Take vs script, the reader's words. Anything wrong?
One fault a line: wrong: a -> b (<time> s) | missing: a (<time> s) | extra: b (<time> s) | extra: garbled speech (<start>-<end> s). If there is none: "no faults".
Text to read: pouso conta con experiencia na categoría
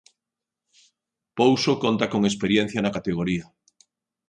no faults